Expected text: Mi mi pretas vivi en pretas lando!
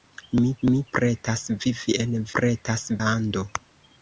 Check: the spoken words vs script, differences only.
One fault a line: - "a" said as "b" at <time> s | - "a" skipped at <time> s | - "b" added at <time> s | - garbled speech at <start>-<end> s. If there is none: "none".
none